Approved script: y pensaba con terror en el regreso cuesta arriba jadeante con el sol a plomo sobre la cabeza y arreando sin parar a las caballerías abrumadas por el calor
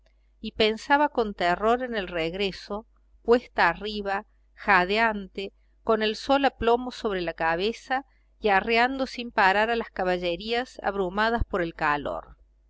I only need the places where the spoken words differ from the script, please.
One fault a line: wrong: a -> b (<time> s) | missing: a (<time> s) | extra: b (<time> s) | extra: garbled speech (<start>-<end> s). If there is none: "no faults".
no faults